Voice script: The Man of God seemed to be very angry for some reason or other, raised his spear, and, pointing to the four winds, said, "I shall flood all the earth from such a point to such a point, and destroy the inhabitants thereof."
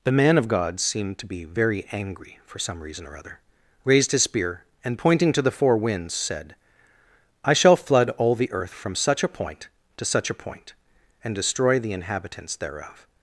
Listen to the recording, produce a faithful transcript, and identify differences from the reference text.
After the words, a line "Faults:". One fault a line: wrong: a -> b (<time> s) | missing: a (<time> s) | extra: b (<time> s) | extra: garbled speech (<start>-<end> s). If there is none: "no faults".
The Man of God seemed to be very angry for some reason or other, raised his spear, and, pointing to the four winds, said, "I shall flood all the earth from such a point to such a point, and destroy the inhabitants thereof."
Faults:
no faults